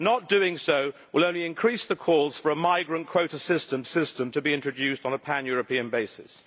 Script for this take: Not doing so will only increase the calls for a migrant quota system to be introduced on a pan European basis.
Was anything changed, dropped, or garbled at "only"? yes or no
no